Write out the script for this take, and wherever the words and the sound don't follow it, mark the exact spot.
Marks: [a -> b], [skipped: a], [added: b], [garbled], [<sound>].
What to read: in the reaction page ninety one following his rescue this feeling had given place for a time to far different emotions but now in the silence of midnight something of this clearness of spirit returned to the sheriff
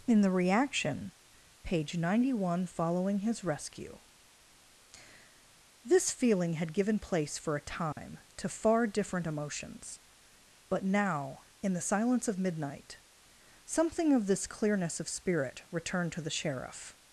in the reaction page ninety one following his rescue this feeling had given place for a time [dropout] to far different emotions but now in the silence of midnight something of this clearness of spirit returned to the sheriff